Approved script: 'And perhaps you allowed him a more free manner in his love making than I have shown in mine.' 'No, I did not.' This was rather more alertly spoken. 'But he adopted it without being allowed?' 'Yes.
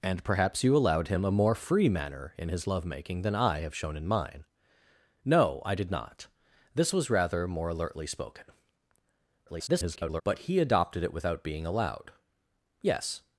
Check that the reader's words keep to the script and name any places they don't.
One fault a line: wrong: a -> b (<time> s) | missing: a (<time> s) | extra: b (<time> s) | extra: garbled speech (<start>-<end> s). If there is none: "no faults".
extra: garbled speech (9.5-10.2 s)